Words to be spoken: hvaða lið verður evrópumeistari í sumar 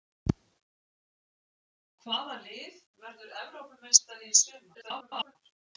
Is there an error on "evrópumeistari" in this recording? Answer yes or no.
no